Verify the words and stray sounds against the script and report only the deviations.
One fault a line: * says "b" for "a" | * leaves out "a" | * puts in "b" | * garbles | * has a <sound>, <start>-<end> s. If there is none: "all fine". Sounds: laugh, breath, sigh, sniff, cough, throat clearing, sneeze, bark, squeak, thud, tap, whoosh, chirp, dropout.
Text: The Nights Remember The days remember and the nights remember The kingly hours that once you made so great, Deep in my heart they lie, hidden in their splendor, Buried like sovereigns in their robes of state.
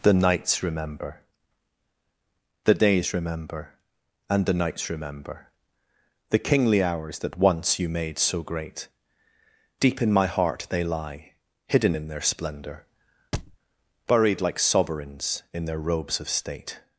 * has a thud, 13.3-13.6 s